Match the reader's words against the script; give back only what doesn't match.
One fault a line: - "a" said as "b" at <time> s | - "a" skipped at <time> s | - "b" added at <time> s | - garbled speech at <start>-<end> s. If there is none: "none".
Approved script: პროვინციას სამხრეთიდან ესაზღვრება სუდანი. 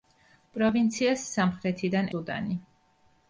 - "ესაზღვრება" skipped at 2.1 s